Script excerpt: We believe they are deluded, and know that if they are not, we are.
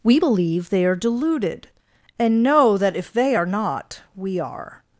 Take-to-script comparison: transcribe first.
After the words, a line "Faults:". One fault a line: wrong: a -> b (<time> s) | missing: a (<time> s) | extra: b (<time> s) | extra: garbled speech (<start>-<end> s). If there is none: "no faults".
We believe they are deluded, and know that if they are not, we are.
Faults:
no faults